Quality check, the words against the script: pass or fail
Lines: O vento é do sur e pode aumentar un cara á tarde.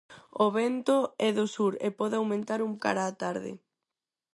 pass